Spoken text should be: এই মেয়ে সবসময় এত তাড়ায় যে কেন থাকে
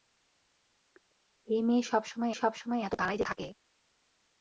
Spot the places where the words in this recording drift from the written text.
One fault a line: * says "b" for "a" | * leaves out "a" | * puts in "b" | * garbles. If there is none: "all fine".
* puts in "সবসময়"
* leaves out "কেন"